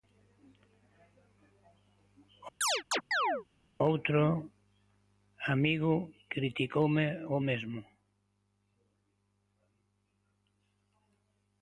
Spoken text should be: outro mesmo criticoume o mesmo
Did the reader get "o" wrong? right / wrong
right